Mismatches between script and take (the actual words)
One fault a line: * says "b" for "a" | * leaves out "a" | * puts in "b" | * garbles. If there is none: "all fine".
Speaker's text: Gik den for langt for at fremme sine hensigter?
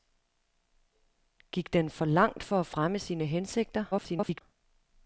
* garbles